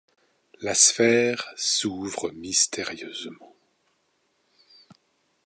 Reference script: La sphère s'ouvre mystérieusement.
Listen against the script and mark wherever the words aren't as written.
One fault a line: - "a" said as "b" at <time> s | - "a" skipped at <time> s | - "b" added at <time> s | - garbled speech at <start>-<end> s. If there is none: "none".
none